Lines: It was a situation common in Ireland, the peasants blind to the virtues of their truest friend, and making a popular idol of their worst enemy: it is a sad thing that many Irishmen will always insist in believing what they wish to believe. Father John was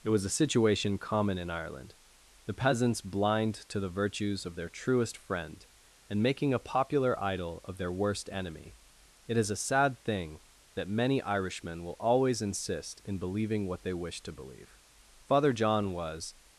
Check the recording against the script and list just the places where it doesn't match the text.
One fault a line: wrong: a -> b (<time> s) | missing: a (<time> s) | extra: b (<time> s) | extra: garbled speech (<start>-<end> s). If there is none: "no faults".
no faults